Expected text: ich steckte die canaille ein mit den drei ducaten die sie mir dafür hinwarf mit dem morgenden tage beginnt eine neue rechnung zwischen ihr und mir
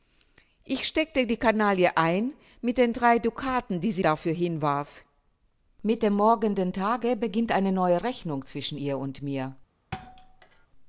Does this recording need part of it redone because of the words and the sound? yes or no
yes